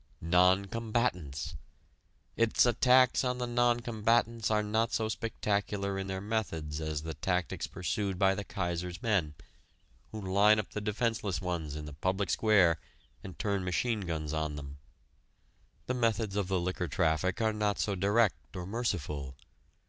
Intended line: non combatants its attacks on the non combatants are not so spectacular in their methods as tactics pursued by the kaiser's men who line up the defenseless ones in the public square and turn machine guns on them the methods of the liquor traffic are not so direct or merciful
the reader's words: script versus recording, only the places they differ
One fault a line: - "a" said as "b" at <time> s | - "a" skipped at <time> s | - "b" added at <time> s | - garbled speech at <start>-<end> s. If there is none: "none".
- "the" added at 7.0 s